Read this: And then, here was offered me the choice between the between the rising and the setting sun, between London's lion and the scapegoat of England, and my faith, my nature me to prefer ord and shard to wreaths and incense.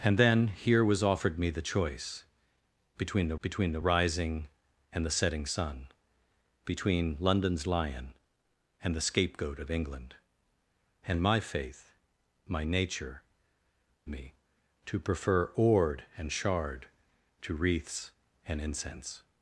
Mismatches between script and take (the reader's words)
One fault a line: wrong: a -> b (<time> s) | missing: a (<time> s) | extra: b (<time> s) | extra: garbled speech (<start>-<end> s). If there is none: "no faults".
no faults